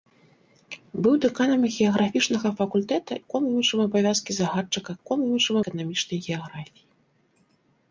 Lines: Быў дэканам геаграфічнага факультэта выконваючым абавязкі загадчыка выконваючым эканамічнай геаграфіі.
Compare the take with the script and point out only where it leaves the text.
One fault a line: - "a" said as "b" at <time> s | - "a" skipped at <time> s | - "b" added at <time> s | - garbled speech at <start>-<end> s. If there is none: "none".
none